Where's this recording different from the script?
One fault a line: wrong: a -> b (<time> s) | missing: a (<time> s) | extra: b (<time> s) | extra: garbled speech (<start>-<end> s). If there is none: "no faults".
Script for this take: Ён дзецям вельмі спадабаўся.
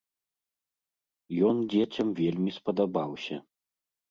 no faults